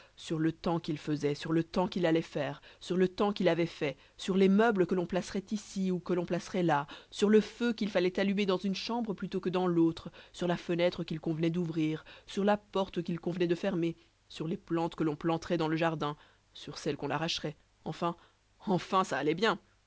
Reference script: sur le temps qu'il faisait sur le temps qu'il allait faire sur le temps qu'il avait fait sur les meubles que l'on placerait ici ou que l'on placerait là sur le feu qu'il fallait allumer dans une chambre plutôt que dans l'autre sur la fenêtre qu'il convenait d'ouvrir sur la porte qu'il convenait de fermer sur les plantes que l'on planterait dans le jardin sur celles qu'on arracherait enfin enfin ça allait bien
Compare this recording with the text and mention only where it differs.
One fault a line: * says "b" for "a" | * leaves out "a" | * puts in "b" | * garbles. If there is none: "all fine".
all fine